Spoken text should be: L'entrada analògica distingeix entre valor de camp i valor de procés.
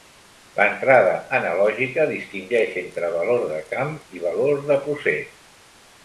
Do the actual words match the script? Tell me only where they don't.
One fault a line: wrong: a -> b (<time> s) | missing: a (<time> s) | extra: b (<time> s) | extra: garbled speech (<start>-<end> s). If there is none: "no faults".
no faults